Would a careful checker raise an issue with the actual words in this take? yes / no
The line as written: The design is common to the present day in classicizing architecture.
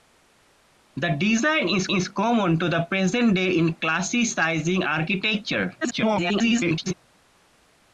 yes